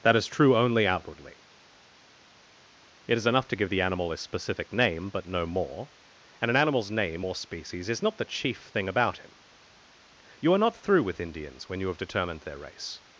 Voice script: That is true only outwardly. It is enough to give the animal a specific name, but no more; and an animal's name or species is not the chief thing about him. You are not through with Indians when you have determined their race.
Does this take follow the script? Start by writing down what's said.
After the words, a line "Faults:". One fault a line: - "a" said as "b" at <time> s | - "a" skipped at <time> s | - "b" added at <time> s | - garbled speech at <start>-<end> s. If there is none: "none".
That is true only outwardly. It is enough to give the animal a specific name, but no more; and an animal's name or species is not the chief thing about him. You are not through with Indians when you have determined their race.
Faults:
none